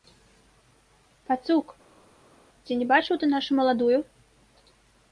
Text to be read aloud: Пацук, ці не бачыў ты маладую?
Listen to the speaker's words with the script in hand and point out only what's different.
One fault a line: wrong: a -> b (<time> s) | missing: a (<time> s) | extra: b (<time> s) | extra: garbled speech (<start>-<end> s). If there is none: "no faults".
extra: нашу (3.4 s)